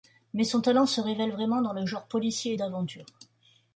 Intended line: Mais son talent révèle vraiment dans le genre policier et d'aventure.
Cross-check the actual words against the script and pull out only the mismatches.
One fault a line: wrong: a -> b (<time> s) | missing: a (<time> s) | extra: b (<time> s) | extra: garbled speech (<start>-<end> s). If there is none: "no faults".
extra: se (0.9 s)